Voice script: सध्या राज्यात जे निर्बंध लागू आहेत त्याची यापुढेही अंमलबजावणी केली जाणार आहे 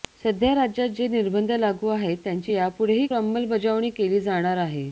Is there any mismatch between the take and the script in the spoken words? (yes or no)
no